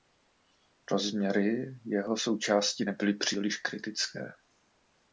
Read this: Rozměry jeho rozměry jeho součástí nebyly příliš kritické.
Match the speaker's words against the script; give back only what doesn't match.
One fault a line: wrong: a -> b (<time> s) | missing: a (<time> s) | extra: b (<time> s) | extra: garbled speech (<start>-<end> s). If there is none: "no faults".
missing: rozměry jeho (2.2 s)